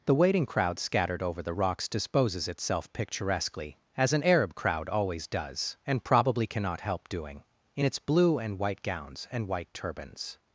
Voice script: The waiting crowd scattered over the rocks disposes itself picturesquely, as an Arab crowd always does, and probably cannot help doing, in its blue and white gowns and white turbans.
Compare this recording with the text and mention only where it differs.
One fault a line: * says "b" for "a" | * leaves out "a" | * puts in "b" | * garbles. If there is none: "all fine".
all fine